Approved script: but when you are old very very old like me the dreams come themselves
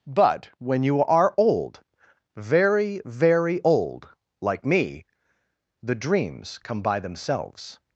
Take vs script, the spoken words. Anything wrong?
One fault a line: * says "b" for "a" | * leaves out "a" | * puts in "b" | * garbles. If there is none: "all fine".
* puts in "by"